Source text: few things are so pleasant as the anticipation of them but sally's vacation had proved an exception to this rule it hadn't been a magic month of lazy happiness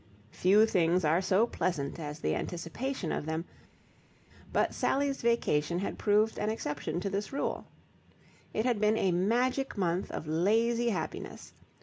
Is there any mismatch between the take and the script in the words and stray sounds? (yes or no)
yes